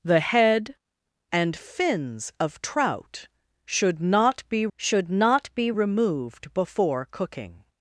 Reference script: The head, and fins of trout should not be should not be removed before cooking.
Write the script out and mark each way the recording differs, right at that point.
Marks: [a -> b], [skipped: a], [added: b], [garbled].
The head, and fins of trout should not be should not be removed before cooking.